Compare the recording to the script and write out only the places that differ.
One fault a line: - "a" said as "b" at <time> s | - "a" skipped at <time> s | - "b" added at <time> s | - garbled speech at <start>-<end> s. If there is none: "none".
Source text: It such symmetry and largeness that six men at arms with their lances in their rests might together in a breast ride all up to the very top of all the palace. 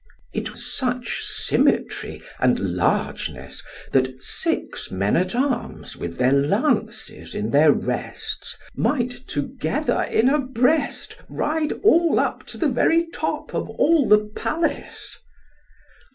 none